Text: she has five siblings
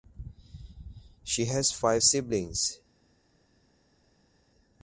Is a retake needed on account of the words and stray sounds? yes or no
no